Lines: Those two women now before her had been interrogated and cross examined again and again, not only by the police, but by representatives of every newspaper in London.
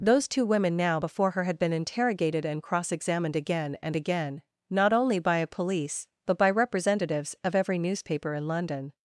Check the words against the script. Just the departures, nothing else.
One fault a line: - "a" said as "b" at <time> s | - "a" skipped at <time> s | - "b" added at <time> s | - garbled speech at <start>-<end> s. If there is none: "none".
- "the" said as "a" at 5.4 s